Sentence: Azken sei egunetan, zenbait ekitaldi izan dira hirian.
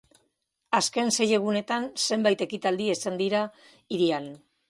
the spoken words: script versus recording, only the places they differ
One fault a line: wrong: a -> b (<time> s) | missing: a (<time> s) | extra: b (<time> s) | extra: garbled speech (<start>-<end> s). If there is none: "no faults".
no faults